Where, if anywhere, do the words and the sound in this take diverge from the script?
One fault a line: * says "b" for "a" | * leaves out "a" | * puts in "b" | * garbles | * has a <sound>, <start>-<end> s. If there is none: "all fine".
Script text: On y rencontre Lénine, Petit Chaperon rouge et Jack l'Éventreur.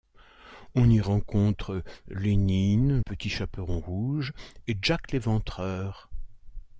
all fine